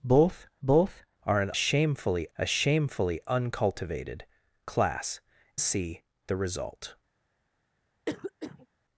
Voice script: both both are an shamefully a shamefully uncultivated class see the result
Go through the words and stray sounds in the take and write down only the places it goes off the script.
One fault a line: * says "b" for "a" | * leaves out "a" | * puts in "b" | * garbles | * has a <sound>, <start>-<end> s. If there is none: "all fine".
* has a cough, 8.1-8.7 s